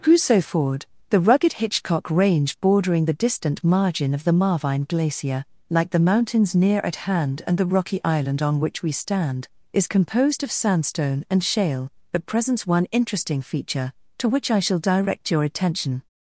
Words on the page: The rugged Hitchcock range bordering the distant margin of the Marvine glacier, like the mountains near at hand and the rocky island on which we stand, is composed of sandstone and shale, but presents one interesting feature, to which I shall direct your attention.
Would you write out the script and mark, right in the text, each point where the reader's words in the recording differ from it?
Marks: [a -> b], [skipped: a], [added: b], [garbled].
[added: crusoe ford] The rugged Hitchcock range bordering the distant margin of the Marvine glacier, like the mountains near at hand and the rocky island on which we stand, is composed of sandstone and shale, but presents one interesting feature, to which I shall direct your attention.